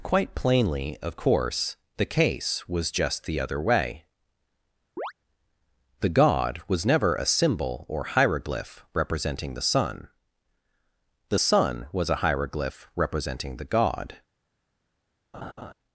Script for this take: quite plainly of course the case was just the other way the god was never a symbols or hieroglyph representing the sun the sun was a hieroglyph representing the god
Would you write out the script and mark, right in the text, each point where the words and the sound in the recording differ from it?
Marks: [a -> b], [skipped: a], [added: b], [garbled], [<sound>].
quite plainly of course the case was just the other way [chirp] the god was never a [symbols -> symbol] or hieroglyph representing the sun the sun was a hieroglyph representing the god [laugh]